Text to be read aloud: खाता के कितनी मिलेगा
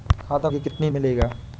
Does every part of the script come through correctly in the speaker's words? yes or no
yes